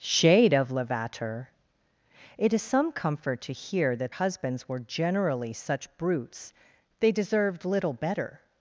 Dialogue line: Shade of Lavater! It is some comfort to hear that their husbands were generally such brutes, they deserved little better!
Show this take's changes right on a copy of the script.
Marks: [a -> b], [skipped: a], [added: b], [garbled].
Shade of Lavater! It is some comfort to hear that [skipped: their] husbands were generally such brutes, they deserved little better!